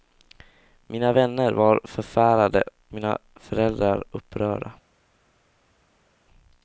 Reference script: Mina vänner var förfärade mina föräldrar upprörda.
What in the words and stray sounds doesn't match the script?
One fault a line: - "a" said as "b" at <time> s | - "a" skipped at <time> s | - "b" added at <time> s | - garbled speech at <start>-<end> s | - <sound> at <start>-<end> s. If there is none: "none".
none